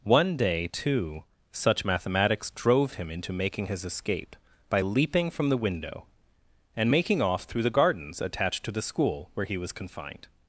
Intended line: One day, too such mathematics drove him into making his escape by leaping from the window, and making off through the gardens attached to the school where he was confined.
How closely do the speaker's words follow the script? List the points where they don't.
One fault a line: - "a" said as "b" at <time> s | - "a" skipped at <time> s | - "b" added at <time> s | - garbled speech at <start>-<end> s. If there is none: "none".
none